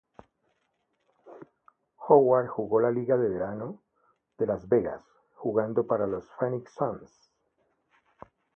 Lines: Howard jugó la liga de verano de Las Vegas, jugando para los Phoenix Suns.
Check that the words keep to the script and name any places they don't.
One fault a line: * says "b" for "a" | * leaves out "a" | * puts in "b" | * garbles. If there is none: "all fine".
all fine